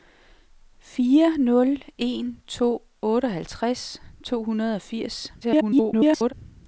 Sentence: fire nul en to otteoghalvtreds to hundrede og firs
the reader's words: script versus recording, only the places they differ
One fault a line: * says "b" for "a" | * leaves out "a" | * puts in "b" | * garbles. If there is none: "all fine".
* garbles